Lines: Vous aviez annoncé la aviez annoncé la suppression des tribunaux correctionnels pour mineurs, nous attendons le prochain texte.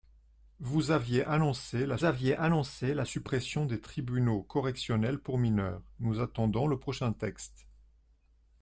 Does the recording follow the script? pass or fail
pass